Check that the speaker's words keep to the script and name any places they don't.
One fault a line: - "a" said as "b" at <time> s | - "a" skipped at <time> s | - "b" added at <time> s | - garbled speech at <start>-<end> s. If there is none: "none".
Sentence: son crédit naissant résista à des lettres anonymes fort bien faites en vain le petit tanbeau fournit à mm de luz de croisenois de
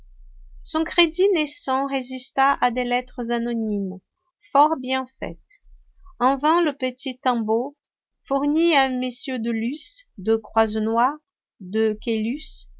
none